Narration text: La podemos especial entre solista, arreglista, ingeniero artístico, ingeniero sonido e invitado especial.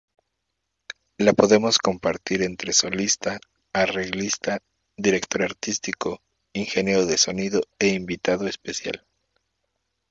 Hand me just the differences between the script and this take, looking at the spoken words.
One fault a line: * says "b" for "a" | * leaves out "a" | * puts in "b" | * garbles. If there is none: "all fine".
* says "compartir" for "especial"
* says "director" for "ingeniero"
* puts in "de"